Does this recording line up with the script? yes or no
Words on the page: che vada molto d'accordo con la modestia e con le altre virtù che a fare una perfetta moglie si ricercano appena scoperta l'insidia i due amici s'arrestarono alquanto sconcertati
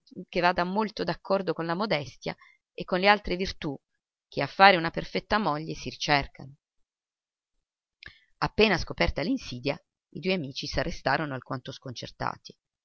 yes